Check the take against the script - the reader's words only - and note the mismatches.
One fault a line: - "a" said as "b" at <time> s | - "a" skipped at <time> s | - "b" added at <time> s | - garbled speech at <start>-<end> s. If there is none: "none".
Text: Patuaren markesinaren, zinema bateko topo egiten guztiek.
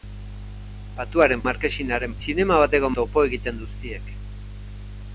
none